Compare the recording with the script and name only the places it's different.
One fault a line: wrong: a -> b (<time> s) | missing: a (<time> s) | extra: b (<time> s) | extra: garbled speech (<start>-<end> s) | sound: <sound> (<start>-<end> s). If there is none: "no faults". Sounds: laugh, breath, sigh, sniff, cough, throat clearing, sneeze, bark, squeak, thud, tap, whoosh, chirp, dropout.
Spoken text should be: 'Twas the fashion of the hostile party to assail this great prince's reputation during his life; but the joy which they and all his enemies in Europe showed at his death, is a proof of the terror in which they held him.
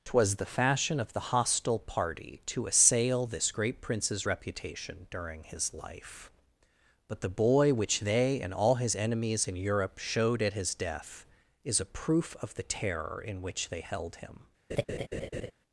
wrong: joy -> boy (7.3 s)
sound: laugh (14.7-15.5 s)